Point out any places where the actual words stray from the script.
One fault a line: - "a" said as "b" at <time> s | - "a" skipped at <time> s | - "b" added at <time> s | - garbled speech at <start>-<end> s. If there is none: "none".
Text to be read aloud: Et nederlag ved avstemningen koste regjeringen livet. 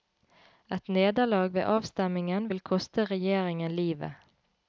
- "vil" added at 2.5 s